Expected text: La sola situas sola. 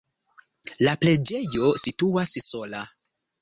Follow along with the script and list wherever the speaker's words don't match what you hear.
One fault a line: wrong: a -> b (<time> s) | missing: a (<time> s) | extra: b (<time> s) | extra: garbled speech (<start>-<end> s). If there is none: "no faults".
wrong: sola -> preĝejo (1.0 s)